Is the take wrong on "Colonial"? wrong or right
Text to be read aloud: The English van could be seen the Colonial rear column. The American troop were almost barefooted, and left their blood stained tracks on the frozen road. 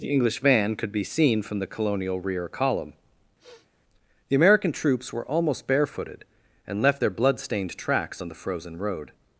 right